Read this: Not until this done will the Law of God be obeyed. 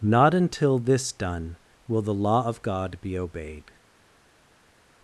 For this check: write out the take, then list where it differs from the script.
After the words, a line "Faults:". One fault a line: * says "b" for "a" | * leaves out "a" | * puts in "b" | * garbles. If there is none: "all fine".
Not until this done will the Law of God be obeyed.
Faults:
all fine